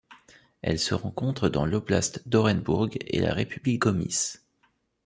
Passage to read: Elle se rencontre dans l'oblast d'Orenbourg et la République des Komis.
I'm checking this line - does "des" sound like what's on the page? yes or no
no